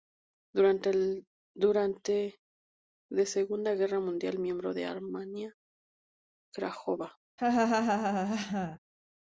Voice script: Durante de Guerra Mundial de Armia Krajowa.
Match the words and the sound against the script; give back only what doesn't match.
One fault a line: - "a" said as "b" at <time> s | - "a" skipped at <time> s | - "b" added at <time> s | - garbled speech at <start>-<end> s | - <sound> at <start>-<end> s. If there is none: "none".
- "Segunda" added at 3.3 s
- "miembro" added at 4.4 s
- laugh at 7.4-8.8 s